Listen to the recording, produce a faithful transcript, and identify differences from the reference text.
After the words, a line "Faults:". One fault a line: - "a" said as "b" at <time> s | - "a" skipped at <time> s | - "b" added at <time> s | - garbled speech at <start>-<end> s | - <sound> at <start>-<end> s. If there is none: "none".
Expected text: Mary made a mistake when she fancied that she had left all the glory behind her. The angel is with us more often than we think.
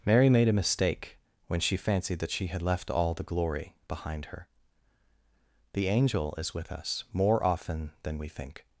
Mary made a mistake when she fancied that she had left all the glory behind her. The angel is with us more often than we think.
Faults:
none